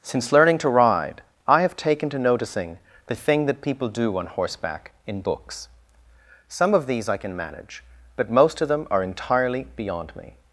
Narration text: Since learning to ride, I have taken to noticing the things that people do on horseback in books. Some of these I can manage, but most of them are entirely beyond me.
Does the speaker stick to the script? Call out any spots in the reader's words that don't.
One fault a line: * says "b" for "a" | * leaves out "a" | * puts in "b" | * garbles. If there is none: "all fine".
* says "thing" for "things"